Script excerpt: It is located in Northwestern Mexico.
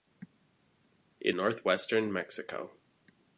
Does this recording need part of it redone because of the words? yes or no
yes